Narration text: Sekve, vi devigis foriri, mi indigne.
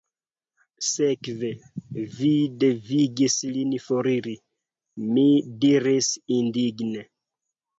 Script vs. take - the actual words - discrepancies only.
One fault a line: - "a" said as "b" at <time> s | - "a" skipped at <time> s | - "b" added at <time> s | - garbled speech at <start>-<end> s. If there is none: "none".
- "lin" added at 3.5 s
- "diris" added at 5.7 s